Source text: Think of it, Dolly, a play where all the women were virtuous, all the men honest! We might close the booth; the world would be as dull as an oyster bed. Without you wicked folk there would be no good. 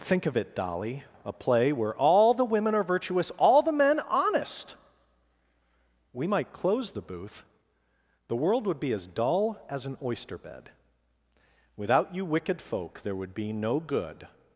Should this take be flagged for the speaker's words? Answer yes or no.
yes